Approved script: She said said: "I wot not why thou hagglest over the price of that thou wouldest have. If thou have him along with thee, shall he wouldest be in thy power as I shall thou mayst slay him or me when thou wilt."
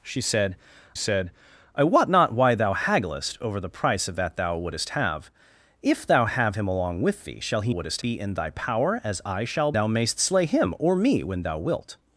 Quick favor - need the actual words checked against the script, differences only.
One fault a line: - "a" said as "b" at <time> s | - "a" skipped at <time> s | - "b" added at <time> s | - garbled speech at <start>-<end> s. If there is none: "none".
none